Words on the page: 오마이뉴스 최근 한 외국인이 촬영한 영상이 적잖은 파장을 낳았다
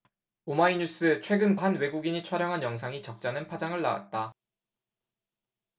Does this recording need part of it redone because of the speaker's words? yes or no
no